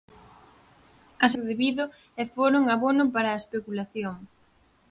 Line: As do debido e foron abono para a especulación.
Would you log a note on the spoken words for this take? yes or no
no